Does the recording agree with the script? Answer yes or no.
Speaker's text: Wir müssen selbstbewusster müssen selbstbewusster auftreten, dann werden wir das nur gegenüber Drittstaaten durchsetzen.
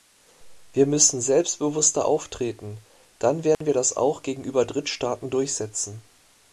no